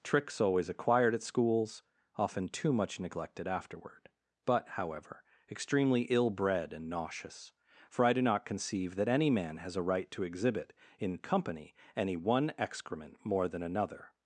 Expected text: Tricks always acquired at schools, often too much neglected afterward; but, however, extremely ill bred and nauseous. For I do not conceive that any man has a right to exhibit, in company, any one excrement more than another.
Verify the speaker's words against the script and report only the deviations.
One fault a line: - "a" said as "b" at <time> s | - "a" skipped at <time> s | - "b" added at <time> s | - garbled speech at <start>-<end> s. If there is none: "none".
none